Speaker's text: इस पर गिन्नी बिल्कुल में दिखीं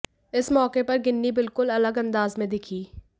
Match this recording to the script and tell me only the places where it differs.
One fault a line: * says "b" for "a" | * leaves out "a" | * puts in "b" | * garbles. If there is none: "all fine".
* puts in "मौके"
* puts in "अलग अंदाज"